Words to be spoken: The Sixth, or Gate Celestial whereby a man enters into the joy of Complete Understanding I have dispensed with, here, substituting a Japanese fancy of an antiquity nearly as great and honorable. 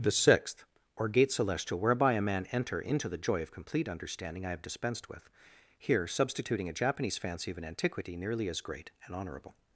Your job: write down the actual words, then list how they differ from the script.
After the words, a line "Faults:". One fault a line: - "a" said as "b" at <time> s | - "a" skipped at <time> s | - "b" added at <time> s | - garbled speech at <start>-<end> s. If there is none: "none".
The Sixth, or Gate Celestial whereby a man enter into the joy of Complete Understanding I have dispensed with, here, substituting a Japanese fancy of an antiquity nearly as great and honorable.
Faults:
- "enters" said as "enter" at 2.5 s